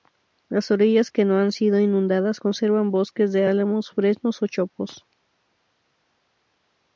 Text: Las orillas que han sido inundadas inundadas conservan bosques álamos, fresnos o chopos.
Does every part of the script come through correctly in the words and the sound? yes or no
no